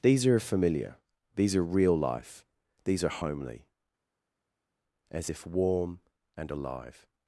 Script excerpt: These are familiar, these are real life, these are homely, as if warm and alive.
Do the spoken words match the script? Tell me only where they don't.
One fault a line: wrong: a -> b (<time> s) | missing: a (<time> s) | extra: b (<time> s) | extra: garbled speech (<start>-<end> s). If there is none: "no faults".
no faults